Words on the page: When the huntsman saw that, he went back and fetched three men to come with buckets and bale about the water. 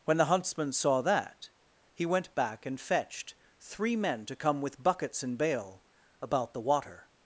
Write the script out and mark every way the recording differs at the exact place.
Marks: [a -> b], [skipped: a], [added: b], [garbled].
When the huntsman saw that, he went back and fetched three men to come with buckets and bale about the water.